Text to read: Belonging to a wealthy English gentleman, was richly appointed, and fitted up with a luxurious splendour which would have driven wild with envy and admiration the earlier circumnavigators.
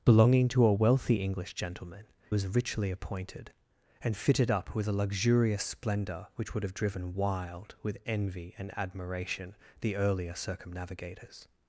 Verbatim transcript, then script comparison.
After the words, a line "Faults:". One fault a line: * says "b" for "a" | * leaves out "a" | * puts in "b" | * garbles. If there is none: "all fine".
Belonging to a wealthy English gentleman, was richly appointed, and fitted up with a luxurious splendour which would have driven wild with envy and admiration the earlier circumnavigators.
Faults:
all fine